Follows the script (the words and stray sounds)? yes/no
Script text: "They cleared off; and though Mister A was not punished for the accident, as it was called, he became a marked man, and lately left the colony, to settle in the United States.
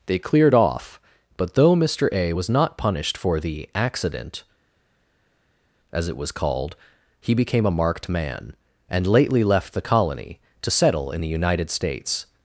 no